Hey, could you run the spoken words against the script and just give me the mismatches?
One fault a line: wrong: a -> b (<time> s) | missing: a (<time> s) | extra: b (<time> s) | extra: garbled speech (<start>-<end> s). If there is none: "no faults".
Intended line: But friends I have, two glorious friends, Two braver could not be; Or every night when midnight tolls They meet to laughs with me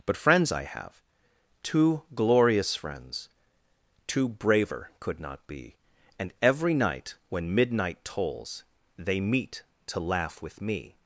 wrong: Or -> And (6.2 s)
wrong: laughs -> laugh (10.0 s)